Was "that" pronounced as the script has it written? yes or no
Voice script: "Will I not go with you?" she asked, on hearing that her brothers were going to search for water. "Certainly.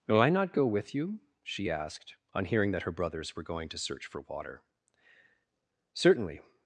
yes